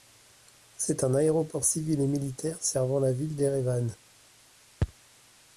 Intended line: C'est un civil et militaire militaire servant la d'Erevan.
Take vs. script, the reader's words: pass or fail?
fail